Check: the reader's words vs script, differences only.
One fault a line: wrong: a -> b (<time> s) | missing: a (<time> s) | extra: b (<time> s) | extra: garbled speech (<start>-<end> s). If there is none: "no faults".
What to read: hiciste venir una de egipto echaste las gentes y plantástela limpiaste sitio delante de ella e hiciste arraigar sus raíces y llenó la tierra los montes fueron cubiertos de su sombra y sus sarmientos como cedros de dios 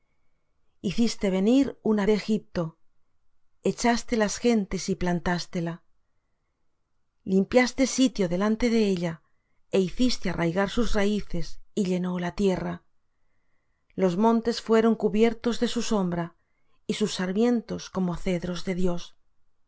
no faults